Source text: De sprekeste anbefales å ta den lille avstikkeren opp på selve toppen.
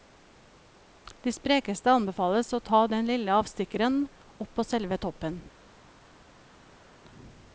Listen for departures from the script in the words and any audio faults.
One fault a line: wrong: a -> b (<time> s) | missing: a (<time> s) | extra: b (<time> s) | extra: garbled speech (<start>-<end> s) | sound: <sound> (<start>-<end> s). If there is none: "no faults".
no faults